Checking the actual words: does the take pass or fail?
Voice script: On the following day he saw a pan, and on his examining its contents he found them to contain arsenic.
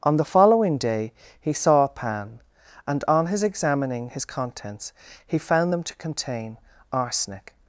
fail